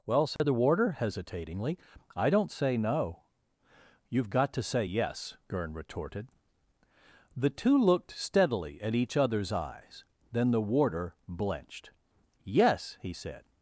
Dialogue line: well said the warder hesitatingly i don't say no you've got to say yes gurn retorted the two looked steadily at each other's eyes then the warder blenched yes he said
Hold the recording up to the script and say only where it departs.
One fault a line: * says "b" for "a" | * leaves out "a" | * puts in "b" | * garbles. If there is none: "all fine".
all fine